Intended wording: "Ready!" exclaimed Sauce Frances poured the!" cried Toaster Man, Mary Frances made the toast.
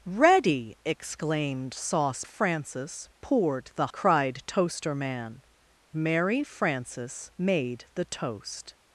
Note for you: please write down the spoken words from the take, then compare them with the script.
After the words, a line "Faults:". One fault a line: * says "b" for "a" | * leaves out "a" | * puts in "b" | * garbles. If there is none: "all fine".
"Ready!" exclaimed Sauce Frances poured the!" cried Toaster Man, Mary Frances made the toast.
Faults:
all fine